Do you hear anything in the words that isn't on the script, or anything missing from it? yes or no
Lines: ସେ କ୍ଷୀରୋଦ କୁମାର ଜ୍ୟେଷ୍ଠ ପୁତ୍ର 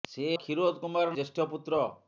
no